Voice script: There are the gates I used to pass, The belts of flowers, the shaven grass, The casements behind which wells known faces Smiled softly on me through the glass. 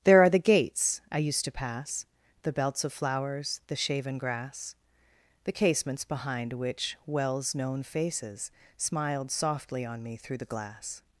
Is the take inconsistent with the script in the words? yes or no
no